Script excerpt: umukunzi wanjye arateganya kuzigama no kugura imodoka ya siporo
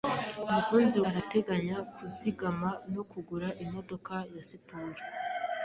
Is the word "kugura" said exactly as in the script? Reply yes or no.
yes